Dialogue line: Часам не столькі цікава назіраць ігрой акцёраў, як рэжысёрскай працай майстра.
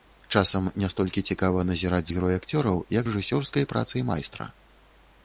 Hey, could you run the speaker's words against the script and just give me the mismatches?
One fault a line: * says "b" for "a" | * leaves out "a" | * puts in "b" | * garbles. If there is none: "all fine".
all fine